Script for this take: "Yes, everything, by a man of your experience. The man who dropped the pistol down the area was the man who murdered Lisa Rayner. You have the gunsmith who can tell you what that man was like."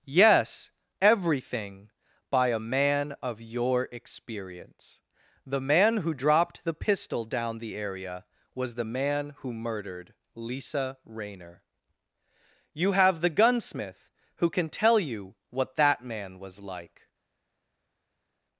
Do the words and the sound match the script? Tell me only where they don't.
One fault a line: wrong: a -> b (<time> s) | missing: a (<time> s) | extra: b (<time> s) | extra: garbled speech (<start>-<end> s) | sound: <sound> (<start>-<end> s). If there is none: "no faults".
no faults